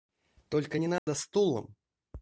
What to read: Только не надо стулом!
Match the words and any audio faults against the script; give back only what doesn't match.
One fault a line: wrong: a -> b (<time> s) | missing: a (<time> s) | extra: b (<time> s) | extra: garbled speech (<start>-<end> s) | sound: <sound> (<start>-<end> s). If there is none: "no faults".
sound: dropout (1.0-1.1 s)